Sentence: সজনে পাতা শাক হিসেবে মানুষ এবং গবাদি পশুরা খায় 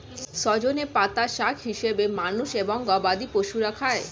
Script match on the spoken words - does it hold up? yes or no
yes